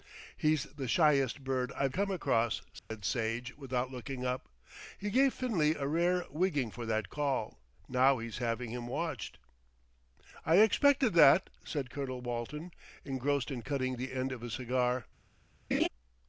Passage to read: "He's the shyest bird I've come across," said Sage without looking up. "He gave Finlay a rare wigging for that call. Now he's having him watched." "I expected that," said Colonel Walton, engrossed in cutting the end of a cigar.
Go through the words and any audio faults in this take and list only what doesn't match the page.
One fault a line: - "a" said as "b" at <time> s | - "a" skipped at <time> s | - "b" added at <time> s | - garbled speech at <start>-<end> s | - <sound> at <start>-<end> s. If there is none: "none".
- dropout at 2.8-2.9 s
- laugh at 15.7-15.9 s